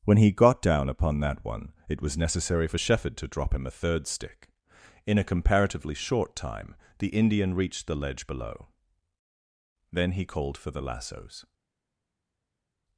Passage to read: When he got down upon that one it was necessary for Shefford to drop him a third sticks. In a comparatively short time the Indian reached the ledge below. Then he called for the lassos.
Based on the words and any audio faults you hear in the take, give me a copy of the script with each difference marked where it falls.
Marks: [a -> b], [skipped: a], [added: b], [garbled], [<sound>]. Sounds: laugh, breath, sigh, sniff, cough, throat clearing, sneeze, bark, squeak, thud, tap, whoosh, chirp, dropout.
When he got down upon that one it was necessary for Shefford to drop him a third [sticks. -> stick] In a comparatively short time the Indian reached the ledge below. Then he called for the lassos.